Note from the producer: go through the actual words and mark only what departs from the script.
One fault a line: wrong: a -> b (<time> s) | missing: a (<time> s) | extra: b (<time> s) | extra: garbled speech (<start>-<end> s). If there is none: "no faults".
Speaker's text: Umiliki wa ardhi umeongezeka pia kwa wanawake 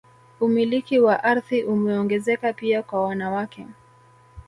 no faults